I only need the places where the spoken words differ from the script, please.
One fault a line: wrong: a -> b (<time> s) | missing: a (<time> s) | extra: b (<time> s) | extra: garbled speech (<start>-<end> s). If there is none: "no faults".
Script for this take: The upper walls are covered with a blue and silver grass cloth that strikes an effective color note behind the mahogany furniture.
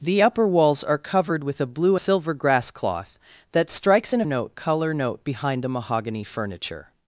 missing: and (1.9 s)
wrong: effective -> note (4.2 s)